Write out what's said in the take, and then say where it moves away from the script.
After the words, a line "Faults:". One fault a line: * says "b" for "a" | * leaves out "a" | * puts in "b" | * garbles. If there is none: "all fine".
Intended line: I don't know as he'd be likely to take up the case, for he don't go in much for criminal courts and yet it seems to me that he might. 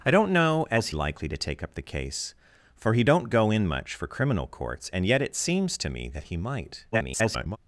I don't know as likely to take up the case, for he don't go in much for criminal courts and yet it seems to me that he might. [garbled]
Faults:
* leaves out "he'd be"
* garbles